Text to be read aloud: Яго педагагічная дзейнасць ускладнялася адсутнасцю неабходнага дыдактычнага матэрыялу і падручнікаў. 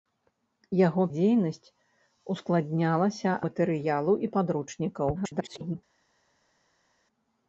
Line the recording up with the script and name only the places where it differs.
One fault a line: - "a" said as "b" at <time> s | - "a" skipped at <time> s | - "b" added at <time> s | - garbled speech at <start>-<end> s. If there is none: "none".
- "педагагічная" skipped at 1.0 s
- "адсутнасцю неабходнага дыдактычнага" skipped at 3.3 s
- garbled speech at 5.2-5.8 s